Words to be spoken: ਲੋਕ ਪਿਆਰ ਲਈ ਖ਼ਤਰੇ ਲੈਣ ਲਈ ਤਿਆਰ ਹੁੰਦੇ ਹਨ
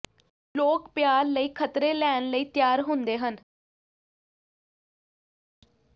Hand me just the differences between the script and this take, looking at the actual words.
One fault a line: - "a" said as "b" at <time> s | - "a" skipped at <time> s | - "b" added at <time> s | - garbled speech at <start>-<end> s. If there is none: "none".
none